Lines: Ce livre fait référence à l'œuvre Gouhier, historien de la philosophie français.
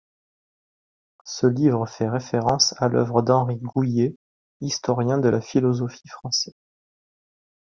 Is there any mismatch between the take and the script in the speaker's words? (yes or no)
yes